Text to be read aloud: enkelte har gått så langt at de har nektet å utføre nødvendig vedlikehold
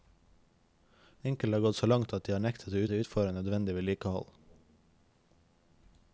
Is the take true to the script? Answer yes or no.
no